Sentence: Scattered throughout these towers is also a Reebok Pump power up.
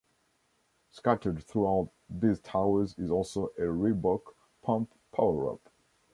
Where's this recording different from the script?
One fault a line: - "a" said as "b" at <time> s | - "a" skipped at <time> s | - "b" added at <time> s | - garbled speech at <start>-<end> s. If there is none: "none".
none